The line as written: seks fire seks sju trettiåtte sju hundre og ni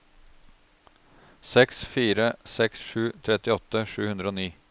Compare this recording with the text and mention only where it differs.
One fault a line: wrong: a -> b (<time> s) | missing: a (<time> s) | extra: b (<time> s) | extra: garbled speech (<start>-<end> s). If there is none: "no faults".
no faults